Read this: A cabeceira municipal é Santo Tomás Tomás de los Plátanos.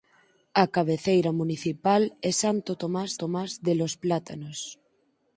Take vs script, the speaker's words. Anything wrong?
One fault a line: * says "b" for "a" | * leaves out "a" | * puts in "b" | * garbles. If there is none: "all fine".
all fine